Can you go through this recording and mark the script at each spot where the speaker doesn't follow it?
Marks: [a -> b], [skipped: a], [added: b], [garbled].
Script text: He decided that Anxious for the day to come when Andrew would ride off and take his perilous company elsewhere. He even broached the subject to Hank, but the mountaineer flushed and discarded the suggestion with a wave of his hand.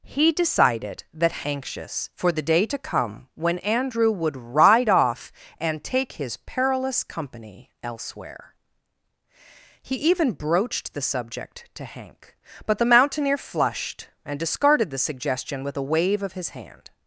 He decided that Anxious for the day to come when Andrew would ride off and take his perilous company elsewhere. He even broached the subject to Hank, but the mountaineer flushed and discarded the suggestion with a wave of his hand.